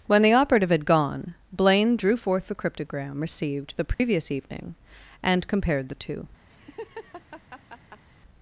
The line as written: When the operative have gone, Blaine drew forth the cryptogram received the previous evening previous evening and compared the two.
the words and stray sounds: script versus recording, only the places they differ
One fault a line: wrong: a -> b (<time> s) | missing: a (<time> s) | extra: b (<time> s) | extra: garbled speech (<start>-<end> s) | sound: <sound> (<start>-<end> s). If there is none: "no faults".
wrong: have -> had (0.7 s)
sound: dropout (3.9-4.0 s)
missing: previous evening (4.8 s)
sound: laugh (6.5-8.0 s)